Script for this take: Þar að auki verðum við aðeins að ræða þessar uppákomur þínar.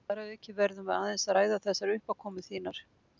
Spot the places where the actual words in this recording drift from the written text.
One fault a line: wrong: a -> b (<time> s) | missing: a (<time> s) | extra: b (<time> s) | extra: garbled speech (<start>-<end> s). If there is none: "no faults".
no faults